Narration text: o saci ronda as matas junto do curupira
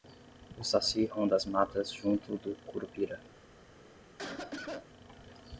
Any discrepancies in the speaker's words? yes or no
no